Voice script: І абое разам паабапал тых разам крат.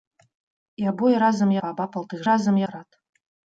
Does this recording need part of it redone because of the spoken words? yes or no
no